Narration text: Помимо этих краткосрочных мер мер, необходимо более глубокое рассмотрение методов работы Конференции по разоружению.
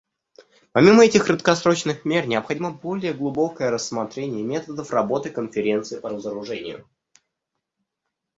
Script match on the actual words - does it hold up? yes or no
no